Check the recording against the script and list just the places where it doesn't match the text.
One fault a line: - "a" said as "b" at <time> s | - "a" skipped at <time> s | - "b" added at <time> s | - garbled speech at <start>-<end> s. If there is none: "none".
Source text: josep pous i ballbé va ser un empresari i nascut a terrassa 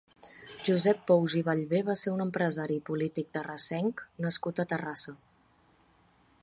- "polític terrassenc" added at 2.9 s